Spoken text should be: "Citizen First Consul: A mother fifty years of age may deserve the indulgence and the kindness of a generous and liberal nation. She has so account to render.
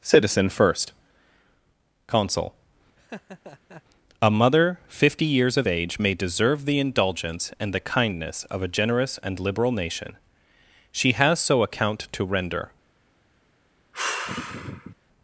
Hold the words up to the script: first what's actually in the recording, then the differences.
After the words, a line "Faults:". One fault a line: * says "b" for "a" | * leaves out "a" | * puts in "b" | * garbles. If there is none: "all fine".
"Citizen First Consul: A mother fifty years of age may deserve the indulgence and the kindness of a generous and liberal nation. She has so account to render.
Faults:
all fine